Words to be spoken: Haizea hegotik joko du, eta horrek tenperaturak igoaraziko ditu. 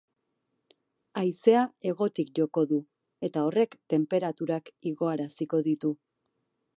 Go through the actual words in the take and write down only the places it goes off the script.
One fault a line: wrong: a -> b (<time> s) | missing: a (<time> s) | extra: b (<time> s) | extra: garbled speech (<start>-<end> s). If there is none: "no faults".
no faults